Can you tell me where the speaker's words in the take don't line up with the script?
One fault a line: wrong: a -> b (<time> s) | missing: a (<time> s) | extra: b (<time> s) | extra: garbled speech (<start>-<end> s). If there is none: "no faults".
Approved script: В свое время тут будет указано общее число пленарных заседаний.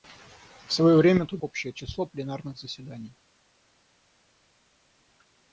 missing: будет указано (1.4 s)